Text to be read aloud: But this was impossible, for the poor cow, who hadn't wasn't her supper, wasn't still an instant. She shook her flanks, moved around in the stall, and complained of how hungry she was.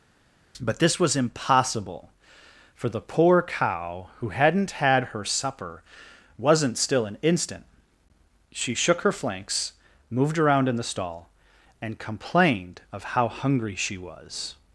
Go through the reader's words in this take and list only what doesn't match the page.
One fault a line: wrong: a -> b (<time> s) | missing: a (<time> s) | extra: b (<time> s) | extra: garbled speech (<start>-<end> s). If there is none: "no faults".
wrong: wasn't -> had (4.7 s)